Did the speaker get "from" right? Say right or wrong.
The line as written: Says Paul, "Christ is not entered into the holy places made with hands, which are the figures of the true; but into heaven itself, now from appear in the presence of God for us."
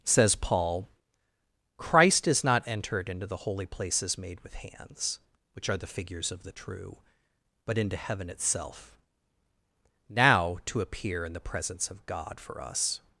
wrong